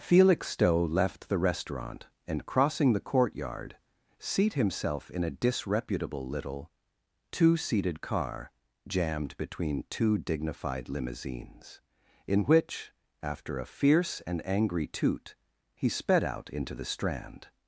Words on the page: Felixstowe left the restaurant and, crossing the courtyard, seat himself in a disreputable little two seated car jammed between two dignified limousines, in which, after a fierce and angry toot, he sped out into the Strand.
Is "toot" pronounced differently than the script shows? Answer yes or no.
no